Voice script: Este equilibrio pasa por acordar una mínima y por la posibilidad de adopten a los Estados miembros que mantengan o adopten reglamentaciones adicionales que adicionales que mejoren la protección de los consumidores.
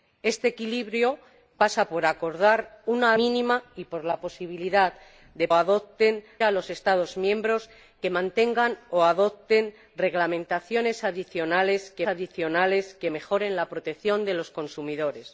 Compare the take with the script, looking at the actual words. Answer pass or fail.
pass